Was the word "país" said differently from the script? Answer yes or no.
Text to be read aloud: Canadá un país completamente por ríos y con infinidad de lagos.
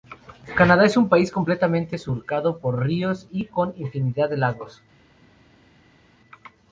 no